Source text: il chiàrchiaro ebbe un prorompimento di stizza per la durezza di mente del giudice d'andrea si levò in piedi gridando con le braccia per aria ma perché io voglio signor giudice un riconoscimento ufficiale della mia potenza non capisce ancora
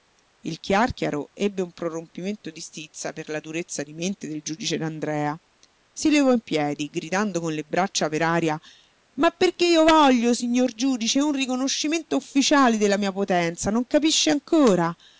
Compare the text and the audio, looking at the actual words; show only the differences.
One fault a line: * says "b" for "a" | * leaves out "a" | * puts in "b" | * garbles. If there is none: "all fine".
all fine